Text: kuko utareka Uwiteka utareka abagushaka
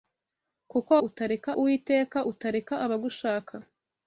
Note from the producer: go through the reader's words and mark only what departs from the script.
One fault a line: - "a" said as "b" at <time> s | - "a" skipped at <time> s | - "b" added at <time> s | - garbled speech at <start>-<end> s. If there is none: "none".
none